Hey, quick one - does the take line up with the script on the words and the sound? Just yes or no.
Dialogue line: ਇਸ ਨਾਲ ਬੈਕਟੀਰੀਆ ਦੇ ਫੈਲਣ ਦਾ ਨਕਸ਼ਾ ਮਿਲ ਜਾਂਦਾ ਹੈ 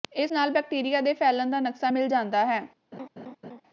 no